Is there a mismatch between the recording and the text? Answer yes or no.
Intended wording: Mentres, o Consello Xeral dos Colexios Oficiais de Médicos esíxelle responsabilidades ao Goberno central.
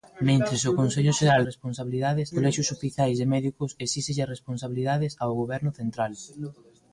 yes